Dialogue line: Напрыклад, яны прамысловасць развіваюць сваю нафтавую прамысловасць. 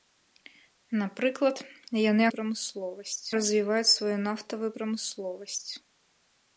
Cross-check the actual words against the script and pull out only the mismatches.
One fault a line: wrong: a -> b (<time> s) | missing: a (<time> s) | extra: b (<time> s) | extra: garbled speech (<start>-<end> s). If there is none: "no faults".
no faults